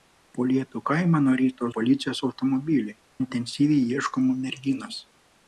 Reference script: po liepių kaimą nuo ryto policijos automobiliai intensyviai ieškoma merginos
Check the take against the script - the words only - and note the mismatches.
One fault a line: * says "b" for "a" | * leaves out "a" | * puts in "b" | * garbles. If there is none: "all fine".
all fine